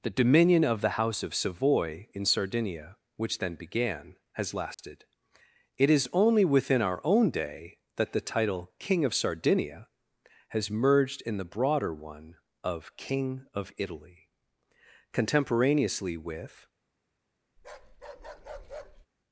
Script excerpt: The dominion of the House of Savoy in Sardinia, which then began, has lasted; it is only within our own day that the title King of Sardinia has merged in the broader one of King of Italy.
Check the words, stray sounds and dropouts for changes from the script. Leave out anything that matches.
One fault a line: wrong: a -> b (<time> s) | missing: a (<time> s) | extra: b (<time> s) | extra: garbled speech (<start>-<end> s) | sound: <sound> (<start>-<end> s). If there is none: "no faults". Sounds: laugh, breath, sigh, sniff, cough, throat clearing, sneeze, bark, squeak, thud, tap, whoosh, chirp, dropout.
sound: dropout (4.7-4.8 s)
extra: Contemporaneously with (15.1 s)
sound: bark (17.6-19.1 s)